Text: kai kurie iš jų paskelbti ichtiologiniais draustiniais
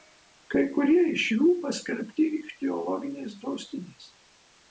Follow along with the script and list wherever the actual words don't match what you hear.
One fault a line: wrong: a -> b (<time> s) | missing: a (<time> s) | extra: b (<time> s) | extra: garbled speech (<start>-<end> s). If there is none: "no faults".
no faults